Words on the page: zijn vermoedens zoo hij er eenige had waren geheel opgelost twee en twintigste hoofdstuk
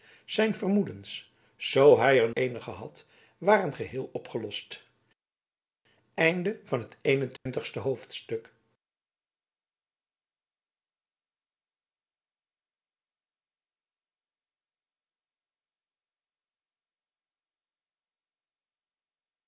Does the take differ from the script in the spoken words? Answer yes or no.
no